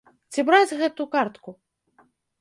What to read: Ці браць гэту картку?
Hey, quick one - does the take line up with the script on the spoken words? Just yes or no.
yes